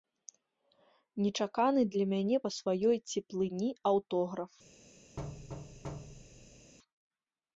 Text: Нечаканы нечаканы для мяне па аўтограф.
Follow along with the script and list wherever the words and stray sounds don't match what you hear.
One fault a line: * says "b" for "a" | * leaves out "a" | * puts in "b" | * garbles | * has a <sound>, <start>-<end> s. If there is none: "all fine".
* leaves out "нечаканы"
* puts in "сваёй цеплыні"
* has a thud, 5.2-6.7 s